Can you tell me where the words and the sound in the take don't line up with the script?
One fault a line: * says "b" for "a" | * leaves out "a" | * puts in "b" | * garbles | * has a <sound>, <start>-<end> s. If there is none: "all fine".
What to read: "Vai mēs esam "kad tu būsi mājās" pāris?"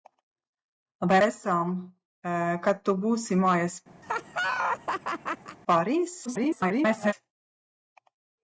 * leaves out "mēs"
* has a laugh, 4.0-5.6 s
* garbles